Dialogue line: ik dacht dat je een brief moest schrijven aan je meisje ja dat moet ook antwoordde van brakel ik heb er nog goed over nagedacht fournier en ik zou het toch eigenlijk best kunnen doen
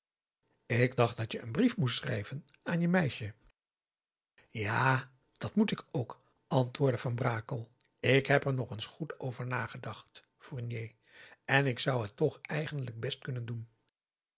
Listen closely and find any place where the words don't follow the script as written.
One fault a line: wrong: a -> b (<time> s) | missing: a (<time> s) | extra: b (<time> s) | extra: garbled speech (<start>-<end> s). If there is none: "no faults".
extra: ik (5.7 s)
extra: eens (8.7 s)